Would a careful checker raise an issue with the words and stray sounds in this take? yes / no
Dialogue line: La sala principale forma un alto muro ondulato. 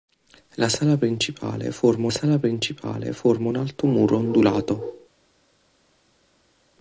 yes